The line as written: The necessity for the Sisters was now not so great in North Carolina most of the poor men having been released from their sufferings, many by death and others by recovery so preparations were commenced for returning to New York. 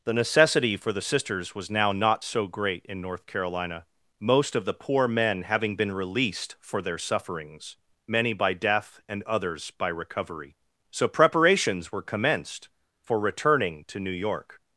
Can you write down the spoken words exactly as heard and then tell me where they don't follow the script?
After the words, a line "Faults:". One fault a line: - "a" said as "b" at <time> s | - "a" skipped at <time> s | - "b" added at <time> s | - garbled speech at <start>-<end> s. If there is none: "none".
The necessity for the Sisters was now not so great in North Carolina most of the poor men having been released for their sufferings, many by death and others by recovery so preparations were commenced for returning to New York.
Faults:
- "from" said as "for" at 6.6 s